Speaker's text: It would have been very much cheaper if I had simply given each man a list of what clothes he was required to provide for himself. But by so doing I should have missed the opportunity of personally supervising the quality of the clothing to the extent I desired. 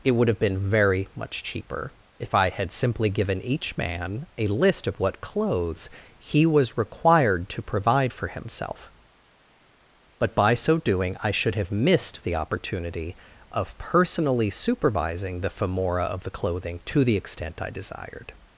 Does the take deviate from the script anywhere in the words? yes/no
yes